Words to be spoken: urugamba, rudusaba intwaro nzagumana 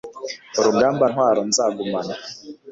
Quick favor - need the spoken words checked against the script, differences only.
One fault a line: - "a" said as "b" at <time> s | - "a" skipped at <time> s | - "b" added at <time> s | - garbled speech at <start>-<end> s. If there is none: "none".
- "rudusaba" skipped at 1.0 s